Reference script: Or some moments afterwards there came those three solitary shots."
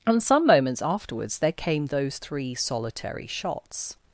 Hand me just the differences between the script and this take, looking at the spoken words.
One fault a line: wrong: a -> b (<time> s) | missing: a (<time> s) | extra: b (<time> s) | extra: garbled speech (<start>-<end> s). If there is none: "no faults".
wrong: Or -> And (0.1 s)